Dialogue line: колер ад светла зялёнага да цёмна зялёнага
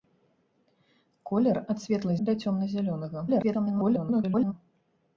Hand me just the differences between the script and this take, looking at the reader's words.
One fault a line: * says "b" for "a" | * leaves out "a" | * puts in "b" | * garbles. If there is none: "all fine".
* leaves out "зялёнага"
* garbles